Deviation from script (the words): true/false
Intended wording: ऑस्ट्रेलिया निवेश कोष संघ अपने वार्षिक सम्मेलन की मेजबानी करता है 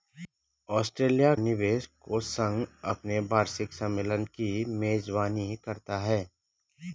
false